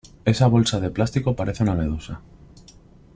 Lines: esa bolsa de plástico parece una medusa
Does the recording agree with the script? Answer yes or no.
yes